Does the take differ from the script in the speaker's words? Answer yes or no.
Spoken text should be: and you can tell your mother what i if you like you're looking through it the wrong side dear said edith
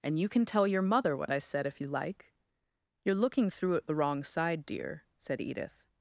yes